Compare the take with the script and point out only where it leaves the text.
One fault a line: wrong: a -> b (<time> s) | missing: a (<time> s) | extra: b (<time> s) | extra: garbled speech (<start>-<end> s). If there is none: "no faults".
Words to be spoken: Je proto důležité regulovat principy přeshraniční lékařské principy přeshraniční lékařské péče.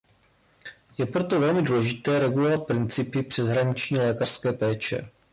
extra: velmi (1.4 s)
missing: principy přeshraniční lékařské (4.5 s)